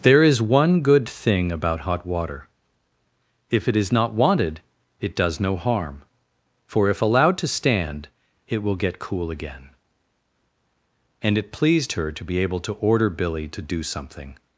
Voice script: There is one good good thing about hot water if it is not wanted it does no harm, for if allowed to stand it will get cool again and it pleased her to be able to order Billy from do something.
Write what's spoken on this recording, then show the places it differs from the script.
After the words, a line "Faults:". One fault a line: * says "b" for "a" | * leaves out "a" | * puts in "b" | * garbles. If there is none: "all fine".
There is one good thing about hot water if it is not wanted it does no harm, for if allowed to stand it will get cool again and it pleased her to be able to order Billy to do something.
Faults:
* leaves out "good"
* says "to" for "from"